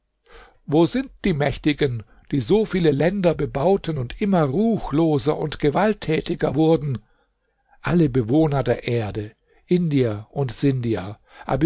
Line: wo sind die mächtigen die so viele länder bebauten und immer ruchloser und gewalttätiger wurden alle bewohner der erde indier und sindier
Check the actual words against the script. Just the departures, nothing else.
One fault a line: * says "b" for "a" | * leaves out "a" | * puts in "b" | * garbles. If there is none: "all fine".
all fine